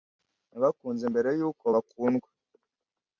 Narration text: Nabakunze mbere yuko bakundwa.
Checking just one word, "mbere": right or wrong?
right